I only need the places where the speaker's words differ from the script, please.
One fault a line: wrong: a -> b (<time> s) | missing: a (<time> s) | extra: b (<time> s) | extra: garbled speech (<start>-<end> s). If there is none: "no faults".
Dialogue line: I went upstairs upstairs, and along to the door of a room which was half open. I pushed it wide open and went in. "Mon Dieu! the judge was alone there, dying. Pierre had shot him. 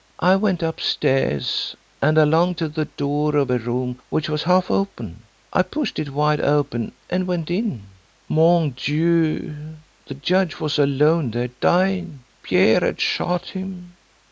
missing: upstairs (1.8 s)